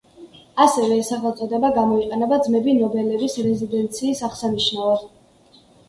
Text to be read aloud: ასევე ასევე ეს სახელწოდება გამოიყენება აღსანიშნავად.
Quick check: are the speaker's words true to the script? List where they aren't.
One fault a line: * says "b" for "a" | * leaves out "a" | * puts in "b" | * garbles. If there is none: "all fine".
* leaves out "ასევე"
* puts in "ძმები ნობელების რეზიდენციის"